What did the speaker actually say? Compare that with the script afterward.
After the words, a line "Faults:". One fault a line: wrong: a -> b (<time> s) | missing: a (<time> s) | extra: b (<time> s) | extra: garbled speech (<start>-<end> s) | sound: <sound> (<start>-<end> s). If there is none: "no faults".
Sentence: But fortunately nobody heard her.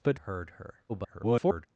But heard her. [garbled]
Faults:
missing: fortunately nobody (0.2 s)
extra: garbled speech (0.9-1.7 s)